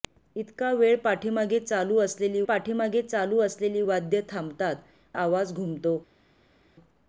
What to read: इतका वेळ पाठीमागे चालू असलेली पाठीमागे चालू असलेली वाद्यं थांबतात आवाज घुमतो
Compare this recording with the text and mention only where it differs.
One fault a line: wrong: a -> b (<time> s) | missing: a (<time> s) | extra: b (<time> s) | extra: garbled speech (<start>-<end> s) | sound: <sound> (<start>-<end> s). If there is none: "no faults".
no faults